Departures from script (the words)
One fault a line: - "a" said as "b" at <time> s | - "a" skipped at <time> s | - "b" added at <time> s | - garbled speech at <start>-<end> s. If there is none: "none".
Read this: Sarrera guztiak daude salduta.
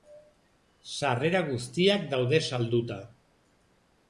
none